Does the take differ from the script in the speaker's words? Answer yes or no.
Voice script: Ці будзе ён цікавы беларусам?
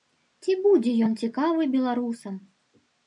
no